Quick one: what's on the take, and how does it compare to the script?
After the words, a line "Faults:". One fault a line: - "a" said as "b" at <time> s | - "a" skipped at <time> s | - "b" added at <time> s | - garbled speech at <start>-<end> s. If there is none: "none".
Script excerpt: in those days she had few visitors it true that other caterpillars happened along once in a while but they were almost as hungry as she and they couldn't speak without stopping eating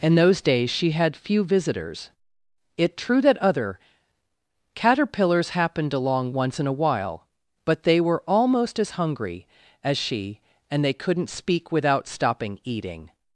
in those days she had few visitors it true that other caterpillars happened along once in a while but they were almost as hungry as she and they couldn't speak without stopping eating
Faults:
none